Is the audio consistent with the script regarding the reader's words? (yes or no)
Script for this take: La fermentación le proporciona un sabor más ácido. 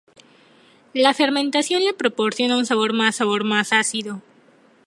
no